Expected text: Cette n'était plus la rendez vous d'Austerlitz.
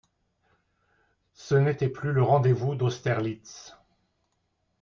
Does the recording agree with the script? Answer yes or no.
no